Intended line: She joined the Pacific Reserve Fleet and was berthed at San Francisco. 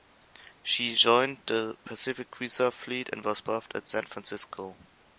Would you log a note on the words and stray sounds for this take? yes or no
no